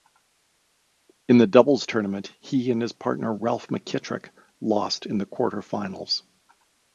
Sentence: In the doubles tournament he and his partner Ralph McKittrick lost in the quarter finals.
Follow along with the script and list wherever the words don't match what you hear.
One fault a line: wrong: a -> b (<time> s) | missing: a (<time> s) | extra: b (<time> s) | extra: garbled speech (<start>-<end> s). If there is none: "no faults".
no faults